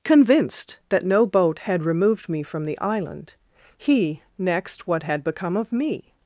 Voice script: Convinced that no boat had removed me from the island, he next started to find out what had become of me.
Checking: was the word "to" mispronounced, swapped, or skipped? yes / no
yes